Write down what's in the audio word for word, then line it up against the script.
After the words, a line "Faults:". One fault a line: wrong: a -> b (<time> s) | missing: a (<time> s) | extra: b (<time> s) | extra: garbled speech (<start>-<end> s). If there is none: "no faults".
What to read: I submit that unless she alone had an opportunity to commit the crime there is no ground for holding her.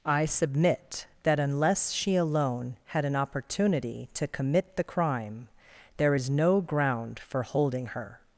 I submit that unless she alone had an opportunity to commit the crime there is no ground for holding her.
Faults:
no faults